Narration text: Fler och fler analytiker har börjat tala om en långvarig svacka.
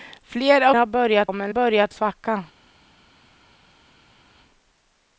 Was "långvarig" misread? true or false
true